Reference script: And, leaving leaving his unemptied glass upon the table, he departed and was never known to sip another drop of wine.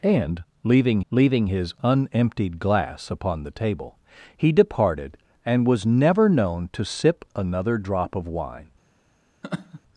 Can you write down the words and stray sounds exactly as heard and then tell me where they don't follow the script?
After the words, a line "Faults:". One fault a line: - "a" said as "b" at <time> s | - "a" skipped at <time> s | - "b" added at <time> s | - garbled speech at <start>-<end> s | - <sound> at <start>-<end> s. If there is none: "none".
And, leaving leaving his unemptied glass upon the table, he departed and was never known to sip another drop of wine.
Faults:
- laugh at 9.4-9.8 s